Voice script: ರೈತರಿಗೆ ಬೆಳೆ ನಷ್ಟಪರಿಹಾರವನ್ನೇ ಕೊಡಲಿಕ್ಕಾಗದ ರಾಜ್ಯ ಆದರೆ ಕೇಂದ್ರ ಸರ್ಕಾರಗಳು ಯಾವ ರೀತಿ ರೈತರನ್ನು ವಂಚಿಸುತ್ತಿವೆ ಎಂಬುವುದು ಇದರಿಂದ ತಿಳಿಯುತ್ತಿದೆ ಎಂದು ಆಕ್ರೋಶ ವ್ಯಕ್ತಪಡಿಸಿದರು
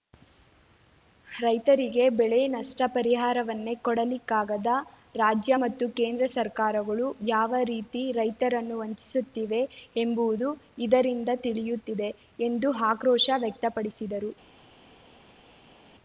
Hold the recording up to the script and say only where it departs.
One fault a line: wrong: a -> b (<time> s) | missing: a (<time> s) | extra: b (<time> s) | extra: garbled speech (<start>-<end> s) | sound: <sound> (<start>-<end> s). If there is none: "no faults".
wrong: ಆದರೆ -> ಮತ್ತು (5.6 s)